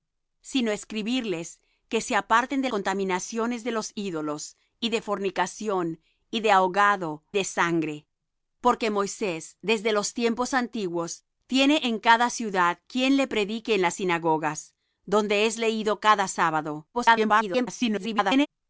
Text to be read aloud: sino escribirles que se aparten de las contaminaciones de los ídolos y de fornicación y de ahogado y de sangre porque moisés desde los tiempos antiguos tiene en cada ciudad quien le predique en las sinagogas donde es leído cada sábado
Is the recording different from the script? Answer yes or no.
yes